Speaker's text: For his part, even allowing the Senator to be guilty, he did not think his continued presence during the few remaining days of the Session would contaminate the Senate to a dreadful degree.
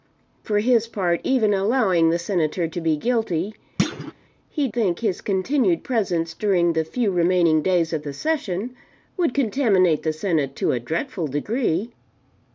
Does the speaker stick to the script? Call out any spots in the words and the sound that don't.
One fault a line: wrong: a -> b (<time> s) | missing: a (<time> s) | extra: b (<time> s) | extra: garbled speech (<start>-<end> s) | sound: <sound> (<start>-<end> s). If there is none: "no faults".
sound: thud (3.8-4.1 s)
missing: did not (4.7 s)